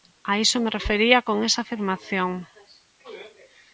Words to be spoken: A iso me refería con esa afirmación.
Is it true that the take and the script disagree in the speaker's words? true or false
false